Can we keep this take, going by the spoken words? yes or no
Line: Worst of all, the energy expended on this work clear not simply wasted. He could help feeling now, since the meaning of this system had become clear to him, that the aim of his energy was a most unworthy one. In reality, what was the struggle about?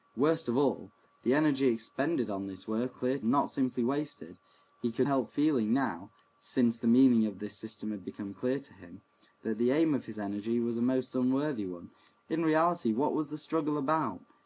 yes